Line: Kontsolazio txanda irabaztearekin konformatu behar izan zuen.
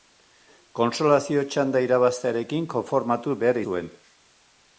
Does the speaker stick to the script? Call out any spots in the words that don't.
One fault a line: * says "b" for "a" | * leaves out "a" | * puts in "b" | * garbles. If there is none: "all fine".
* leaves out "izan"